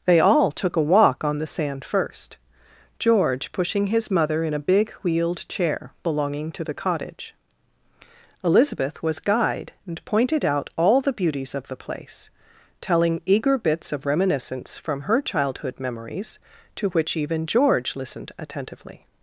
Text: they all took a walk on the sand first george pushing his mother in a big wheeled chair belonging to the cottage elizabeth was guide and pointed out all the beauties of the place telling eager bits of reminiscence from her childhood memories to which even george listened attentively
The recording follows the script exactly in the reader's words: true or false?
true